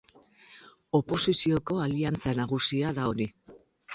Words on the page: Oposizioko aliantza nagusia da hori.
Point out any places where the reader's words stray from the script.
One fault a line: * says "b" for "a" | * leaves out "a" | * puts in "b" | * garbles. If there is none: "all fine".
all fine